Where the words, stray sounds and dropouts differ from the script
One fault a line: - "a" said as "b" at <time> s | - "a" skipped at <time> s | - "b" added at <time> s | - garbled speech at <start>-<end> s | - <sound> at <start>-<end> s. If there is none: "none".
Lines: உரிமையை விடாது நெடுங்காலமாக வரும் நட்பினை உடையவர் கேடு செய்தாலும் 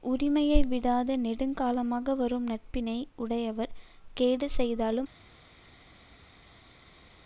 none